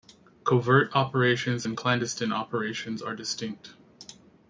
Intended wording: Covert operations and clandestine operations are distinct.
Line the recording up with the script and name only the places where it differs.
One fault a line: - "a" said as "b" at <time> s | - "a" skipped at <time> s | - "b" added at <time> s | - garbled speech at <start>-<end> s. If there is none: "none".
none